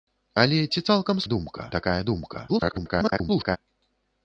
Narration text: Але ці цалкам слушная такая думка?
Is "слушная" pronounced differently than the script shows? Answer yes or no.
yes